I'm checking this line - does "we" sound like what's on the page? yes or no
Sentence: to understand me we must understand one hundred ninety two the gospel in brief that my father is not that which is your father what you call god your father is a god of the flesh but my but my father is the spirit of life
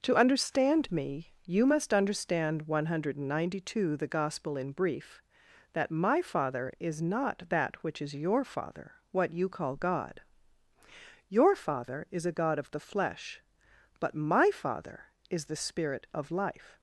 no